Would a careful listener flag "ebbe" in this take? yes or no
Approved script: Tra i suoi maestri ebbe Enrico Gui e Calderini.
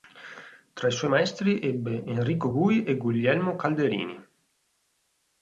no